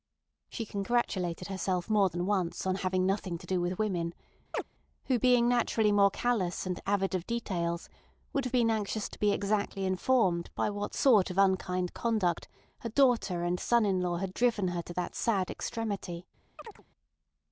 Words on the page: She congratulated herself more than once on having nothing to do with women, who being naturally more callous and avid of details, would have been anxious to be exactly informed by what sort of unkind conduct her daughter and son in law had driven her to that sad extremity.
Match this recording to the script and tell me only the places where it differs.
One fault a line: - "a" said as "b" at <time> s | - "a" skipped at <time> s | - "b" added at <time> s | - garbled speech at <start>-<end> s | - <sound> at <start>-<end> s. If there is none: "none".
- chirp at 4.5-4.6 s
- chirp at 16.6-16.8 s